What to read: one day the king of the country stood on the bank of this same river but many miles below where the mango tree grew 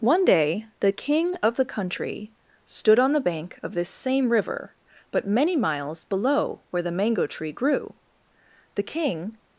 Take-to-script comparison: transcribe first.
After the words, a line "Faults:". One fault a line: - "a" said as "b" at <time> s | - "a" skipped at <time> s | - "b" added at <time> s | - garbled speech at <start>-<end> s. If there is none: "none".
one day the king of the country stood on the bank of this same river but many miles below where the mango tree grew the king
Faults:
- "the king" added at 8.7 s